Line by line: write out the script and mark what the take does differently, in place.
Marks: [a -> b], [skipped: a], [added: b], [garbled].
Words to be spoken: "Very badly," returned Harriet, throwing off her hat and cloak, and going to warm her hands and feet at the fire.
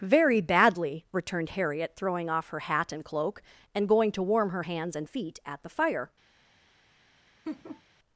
"Very badly," returned Harriet, throwing off her hat and cloak, and going to warm her hands and feet at the fire.